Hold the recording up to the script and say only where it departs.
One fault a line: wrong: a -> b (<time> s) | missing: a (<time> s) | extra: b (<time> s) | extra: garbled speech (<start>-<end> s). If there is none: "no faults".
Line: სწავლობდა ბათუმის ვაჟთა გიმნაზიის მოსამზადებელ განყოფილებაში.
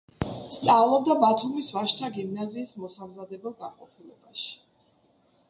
no faults